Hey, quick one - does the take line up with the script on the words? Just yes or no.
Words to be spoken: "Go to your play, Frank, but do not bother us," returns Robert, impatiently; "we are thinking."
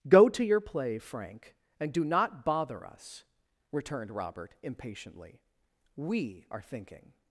no